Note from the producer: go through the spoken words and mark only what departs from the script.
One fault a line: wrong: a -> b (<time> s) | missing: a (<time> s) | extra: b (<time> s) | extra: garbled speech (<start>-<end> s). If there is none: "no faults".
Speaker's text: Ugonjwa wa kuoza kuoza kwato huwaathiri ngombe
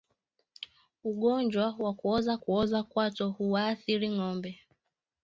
no faults